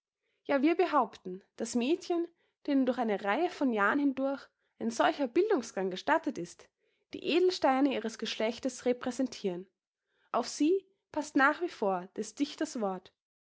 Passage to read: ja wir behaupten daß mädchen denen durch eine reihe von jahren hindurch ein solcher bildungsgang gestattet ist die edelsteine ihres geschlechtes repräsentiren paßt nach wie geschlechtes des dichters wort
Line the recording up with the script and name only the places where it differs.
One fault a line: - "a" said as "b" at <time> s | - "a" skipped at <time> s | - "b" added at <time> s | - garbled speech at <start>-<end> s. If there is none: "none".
- "auf sie" added at 10.3 s
- "geschlechtes" said as "vor" at 11.7 s